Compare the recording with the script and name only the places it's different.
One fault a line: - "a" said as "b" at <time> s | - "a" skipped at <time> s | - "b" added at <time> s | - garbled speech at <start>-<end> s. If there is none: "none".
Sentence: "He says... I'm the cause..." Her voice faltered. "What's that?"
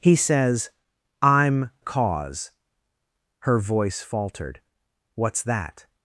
- "the" skipped at 1.7 s